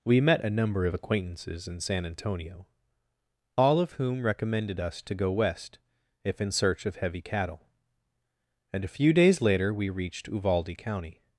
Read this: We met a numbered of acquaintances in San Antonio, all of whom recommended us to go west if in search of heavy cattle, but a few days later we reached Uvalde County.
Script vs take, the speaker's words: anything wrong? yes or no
yes